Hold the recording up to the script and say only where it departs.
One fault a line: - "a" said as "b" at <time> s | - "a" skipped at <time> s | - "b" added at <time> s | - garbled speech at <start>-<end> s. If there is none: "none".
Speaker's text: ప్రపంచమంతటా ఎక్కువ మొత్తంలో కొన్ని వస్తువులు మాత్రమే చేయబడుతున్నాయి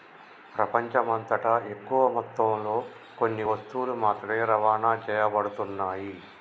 - "రవాణా" added at 4.5 s